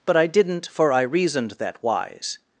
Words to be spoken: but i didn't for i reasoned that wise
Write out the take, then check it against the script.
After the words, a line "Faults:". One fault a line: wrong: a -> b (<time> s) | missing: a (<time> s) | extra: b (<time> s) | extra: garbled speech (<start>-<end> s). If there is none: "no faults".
but i didn't for i reasoned that wise
Faults:
no faults